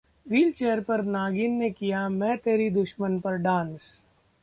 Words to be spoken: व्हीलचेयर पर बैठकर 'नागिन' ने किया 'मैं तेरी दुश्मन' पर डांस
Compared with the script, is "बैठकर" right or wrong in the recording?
wrong